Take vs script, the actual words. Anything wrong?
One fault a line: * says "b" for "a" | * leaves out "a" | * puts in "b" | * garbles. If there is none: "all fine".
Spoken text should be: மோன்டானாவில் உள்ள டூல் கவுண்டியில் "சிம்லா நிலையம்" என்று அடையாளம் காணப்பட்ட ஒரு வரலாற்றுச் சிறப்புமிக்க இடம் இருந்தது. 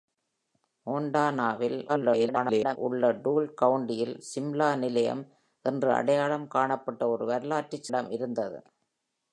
* garbles
* leaves out "சிறப்புமிக்க"